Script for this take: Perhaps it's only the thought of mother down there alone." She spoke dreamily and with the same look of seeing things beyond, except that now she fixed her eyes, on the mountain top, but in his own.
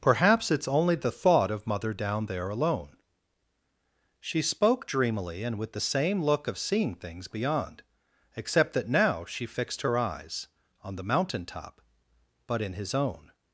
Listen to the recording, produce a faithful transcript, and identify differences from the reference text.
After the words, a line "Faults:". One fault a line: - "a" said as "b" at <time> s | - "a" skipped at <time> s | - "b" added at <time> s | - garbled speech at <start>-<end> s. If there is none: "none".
Perhaps it's only the thought of mother down there alone." She spoke dreamily and with the same look of seeing things beyond, except that now she fixed her eyes, on the mountain top, but in his own.
Faults:
none